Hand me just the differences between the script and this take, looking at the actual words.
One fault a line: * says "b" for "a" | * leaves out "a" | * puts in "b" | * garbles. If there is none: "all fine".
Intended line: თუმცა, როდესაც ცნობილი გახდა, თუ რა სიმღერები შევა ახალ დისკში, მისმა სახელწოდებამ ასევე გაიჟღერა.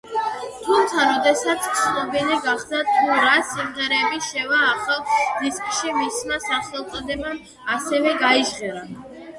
all fine